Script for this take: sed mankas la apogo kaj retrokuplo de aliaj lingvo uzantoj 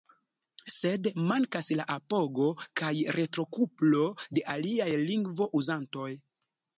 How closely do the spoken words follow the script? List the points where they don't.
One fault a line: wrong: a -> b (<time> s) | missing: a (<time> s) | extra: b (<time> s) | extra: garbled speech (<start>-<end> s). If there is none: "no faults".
no faults